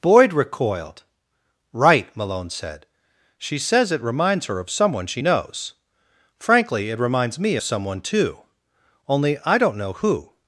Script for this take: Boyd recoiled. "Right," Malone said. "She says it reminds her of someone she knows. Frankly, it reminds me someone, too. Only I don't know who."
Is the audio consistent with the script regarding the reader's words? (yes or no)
yes